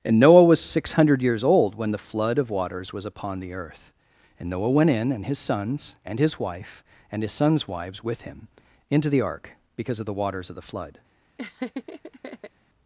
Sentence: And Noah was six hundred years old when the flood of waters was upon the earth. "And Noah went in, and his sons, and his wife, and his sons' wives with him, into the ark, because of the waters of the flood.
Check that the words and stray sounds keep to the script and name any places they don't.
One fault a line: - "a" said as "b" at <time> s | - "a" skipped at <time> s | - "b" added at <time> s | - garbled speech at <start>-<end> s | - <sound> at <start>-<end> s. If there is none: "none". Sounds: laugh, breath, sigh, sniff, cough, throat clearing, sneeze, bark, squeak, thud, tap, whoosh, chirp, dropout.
- laugh at 11.4-12.5 s